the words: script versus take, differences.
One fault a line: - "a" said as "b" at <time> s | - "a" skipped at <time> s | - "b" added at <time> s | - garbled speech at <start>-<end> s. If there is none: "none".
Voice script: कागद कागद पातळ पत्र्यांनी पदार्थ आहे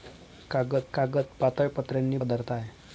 none